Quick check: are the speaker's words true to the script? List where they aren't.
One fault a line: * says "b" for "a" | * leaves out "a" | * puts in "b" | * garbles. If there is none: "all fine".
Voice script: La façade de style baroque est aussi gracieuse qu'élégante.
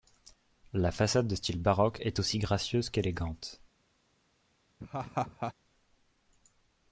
all fine